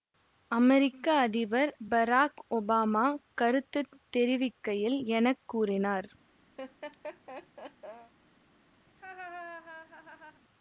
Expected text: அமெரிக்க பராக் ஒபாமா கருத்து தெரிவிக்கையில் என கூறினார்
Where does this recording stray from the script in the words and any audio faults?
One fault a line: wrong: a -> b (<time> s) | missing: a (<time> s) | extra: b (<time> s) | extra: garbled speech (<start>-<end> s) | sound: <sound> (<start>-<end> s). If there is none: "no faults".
extra: அதிபர் (1.2 s)
sound: laugh (6.6-8.1 s)
sound: laugh (8.9-10.4 s)